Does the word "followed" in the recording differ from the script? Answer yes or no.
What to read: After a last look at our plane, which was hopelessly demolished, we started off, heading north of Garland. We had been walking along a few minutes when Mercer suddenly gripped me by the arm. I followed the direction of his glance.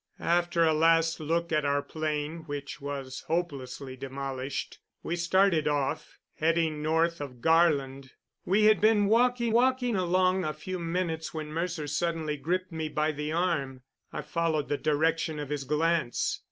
no